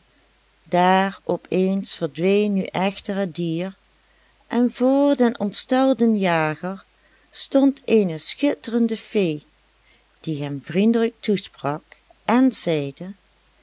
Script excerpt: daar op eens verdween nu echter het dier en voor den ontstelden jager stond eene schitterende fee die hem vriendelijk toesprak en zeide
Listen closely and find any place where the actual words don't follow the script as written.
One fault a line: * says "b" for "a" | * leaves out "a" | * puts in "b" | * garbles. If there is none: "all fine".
all fine